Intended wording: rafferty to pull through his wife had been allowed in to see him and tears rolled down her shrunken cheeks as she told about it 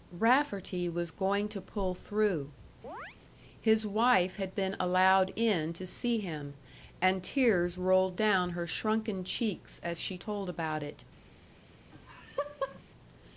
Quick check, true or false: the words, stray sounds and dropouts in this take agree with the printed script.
false